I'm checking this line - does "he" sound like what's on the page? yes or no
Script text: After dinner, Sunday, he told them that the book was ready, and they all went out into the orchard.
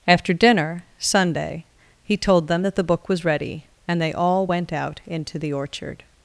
yes